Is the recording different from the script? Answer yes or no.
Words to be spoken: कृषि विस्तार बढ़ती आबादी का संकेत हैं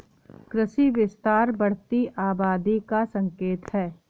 no